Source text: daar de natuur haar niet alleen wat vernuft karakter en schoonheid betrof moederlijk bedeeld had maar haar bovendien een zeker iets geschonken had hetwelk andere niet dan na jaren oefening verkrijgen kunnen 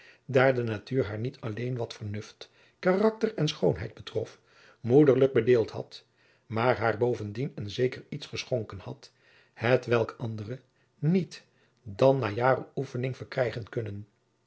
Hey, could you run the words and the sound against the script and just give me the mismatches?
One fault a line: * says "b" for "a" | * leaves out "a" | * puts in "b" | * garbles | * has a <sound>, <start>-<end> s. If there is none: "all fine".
all fine